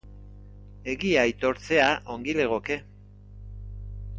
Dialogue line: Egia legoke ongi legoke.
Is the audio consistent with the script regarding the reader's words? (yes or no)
no